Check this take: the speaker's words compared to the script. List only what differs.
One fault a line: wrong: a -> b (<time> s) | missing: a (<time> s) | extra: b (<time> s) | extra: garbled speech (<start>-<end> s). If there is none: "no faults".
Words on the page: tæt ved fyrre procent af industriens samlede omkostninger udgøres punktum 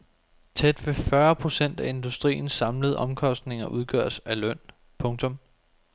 extra: af løn (4.3 s)